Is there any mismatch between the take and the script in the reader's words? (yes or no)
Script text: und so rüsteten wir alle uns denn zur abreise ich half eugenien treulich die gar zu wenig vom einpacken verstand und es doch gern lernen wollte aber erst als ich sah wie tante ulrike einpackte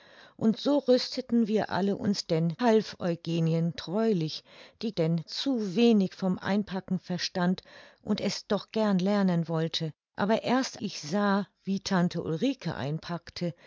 yes